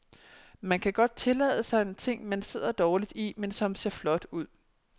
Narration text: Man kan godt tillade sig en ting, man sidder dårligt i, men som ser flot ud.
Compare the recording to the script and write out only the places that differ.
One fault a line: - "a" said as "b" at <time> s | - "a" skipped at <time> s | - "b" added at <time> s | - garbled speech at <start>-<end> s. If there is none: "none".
none